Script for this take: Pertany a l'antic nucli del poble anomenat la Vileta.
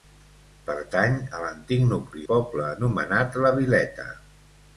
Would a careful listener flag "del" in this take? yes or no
yes